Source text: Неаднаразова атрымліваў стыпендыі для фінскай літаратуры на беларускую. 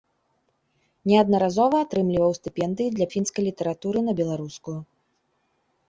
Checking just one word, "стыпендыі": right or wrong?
right